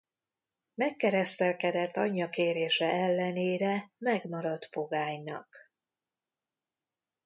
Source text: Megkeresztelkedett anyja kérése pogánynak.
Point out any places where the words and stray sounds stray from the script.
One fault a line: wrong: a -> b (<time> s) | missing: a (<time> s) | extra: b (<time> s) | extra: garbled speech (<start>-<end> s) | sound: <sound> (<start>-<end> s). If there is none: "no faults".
extra: ellenére megmaradt (2.9 s)